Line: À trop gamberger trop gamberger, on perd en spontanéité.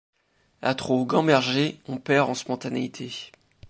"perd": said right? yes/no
yes